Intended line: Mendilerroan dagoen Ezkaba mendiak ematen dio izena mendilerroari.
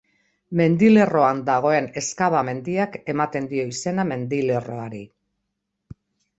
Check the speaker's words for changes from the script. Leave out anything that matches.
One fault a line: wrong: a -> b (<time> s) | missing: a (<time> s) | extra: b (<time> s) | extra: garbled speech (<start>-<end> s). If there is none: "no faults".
no faults